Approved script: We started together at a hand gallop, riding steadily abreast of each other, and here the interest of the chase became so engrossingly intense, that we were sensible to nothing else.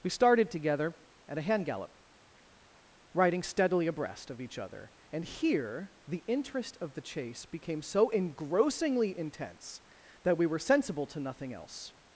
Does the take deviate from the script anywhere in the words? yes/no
no